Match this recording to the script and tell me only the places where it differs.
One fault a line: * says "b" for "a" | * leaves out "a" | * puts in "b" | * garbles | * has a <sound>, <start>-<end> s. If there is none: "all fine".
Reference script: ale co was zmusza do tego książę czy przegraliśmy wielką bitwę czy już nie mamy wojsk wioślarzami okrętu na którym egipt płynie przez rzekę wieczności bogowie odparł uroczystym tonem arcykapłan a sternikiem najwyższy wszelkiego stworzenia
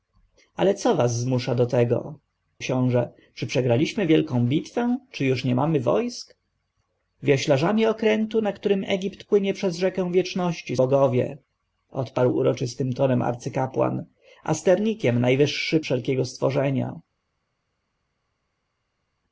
all fine